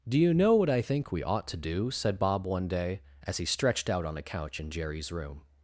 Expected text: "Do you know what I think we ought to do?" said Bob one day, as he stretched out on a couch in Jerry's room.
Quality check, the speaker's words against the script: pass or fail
pass